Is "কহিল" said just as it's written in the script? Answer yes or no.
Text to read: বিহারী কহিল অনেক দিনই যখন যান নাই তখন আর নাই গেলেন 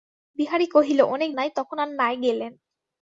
yes